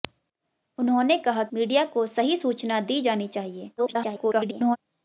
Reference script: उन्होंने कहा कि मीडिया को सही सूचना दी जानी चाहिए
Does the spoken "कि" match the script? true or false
false